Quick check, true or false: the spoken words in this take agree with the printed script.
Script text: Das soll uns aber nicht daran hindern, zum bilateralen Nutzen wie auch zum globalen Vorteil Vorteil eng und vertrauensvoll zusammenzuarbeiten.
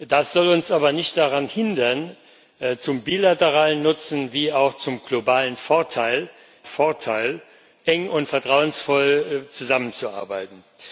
true